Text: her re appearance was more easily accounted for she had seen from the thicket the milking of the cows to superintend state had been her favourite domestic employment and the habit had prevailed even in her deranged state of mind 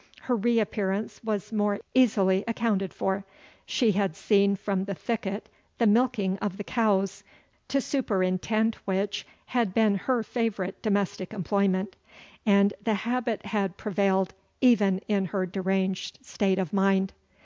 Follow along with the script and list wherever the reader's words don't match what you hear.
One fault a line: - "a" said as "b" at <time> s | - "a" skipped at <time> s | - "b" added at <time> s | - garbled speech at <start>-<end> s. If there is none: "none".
- "state" said as "which" at 8.8 s